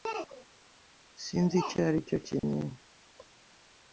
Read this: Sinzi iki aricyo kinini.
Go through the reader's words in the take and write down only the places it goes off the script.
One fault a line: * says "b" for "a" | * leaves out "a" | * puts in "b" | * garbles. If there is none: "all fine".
* says "icyo" for "iki"